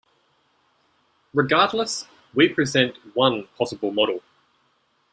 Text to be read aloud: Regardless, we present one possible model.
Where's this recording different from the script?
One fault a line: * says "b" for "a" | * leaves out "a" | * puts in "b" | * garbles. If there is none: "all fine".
all fine